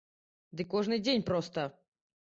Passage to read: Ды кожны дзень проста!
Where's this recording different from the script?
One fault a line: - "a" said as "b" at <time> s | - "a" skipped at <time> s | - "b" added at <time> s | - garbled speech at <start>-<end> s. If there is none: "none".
none